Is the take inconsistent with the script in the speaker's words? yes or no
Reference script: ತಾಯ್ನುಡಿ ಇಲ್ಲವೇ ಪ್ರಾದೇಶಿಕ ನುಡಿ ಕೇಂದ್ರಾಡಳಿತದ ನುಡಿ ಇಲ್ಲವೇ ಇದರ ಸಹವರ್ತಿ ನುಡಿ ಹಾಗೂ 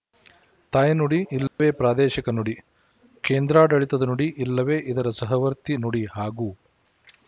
no